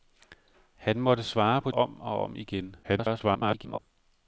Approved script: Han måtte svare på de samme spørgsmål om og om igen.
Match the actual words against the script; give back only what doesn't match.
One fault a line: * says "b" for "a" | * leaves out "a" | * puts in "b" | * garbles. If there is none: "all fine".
* leaves out "de samme spørgsmål"
* garbles